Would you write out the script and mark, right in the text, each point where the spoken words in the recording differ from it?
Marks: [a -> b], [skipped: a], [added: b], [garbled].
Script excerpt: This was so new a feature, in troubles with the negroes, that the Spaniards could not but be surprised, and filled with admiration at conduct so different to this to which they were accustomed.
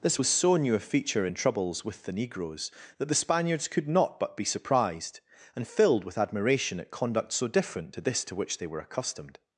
This was so new a feature, in troubles with the negroes, that the Spaniards could not but be surprised, and filled with admiration at conduct so different to this to which they were accustomed.